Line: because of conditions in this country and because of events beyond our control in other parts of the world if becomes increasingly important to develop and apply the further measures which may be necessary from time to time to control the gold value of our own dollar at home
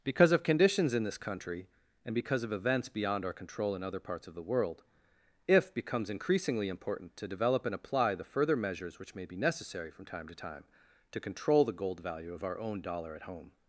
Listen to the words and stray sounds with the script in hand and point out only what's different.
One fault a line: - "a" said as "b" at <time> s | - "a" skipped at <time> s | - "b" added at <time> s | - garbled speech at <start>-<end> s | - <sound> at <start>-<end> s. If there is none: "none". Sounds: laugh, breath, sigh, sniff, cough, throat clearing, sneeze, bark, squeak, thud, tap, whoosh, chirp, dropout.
none